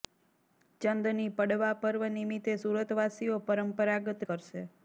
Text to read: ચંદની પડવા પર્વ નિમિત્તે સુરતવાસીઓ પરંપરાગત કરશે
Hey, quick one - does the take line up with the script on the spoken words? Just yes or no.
yes